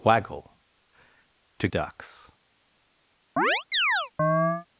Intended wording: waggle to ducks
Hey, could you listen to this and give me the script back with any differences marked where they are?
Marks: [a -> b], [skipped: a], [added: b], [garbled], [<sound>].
waggle to ducks [chirp]